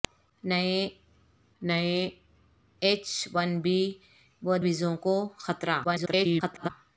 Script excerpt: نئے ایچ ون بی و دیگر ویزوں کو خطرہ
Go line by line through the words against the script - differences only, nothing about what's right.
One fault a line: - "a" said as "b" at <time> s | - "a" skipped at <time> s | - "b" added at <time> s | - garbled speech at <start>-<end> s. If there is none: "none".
- "نئے" added at 1.6 s
- "دیگر" skipped at 4.5 s
- garbled speech at 5.8-6.7 s